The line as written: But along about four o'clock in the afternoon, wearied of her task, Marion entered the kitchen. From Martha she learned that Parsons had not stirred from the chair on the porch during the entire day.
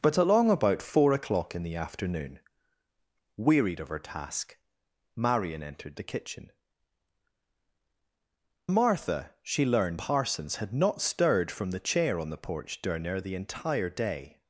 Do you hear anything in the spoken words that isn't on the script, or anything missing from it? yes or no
yes